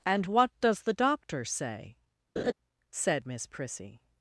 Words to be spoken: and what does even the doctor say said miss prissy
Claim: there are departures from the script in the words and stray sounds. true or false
true